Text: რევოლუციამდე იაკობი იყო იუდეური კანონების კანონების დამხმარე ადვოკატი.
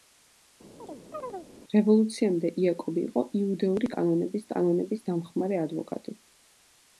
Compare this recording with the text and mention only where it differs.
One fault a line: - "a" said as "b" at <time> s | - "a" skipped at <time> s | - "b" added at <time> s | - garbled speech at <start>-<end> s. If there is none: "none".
none